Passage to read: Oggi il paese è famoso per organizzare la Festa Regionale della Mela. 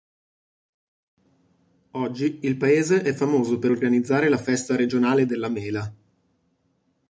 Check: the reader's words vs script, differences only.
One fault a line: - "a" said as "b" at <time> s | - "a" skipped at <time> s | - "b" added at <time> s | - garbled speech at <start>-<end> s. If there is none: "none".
none